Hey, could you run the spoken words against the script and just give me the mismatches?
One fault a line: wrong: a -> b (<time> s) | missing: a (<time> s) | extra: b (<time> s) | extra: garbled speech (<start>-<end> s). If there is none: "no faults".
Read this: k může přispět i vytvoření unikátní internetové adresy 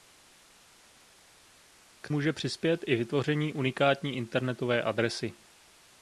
no faults